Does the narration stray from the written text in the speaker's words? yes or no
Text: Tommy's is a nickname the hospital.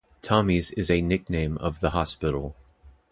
yes